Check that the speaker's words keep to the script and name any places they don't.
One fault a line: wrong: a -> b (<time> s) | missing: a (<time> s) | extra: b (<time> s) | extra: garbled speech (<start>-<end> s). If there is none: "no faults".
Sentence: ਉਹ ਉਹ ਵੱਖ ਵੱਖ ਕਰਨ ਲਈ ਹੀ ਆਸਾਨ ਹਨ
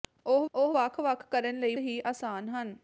no faults